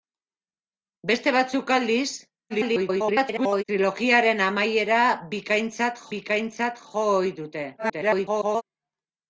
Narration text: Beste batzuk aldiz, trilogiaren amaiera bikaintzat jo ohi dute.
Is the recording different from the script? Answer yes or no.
yes